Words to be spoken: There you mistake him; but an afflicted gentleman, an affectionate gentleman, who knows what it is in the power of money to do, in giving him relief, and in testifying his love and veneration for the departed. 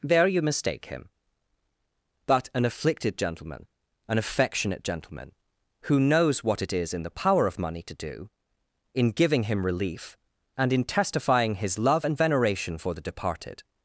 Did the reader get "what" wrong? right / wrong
right